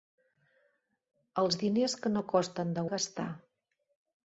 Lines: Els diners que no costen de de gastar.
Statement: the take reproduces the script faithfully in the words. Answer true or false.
true